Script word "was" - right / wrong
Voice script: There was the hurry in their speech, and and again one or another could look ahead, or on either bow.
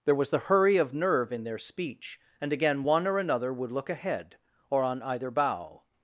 right